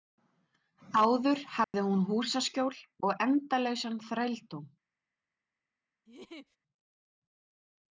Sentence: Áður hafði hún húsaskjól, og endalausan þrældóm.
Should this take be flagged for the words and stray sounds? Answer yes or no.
yes